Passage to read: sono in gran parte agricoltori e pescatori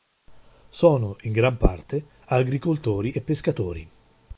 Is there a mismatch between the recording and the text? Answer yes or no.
no